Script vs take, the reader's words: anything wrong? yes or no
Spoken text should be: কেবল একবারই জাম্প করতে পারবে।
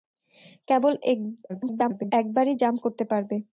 yes